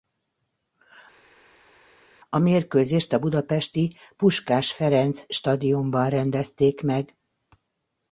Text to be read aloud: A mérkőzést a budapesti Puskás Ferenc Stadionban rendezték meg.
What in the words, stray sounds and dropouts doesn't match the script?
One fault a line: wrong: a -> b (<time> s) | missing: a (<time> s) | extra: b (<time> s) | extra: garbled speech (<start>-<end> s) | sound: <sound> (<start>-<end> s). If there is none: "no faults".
no faults